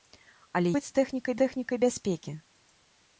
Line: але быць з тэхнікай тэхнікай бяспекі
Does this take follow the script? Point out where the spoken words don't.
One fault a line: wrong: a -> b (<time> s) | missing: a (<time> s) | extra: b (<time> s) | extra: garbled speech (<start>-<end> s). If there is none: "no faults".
no faults